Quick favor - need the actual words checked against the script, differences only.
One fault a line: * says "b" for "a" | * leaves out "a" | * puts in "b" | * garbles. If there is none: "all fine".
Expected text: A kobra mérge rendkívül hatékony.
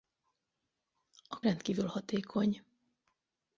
* leaves out "kobra mérge"